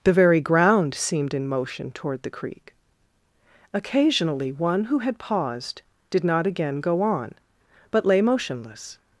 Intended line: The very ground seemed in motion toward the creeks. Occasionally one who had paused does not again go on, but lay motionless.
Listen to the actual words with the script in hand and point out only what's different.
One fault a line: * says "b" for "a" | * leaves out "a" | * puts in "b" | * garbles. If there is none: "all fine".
* says "creek" for "creeks"
* says "did" for "does"